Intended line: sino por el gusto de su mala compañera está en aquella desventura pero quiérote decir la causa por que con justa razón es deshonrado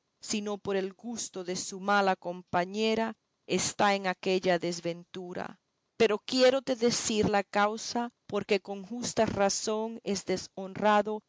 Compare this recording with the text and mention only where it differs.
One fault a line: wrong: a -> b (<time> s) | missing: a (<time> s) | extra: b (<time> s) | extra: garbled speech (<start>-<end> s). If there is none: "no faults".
no faults